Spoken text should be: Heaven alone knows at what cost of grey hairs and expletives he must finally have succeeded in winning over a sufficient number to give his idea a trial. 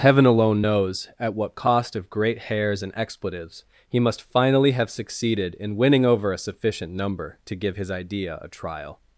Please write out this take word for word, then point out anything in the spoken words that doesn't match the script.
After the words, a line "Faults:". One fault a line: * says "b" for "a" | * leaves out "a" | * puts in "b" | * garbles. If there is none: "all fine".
Heaven alone knows at what cost of great hairs and expletives he must finally have succeeded in winning over a sufficient number to give his idea a trial.
Faults:
* says "great" for "grey"